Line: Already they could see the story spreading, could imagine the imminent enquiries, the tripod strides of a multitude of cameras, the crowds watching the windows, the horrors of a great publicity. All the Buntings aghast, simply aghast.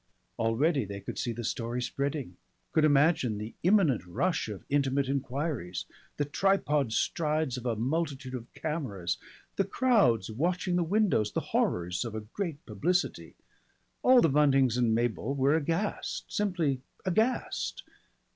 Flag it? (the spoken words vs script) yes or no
yes